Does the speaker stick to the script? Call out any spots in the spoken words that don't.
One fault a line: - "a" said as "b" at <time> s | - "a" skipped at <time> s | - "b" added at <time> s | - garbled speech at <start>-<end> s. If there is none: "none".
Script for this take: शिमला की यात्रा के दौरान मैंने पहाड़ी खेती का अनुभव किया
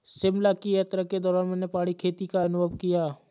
none